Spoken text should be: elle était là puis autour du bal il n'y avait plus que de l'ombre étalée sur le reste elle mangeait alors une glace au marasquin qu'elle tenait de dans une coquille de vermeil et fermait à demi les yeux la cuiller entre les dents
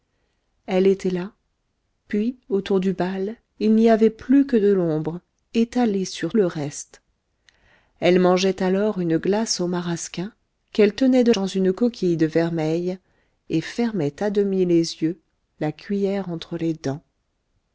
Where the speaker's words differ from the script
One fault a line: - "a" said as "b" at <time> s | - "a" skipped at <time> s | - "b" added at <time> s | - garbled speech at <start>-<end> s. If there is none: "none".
none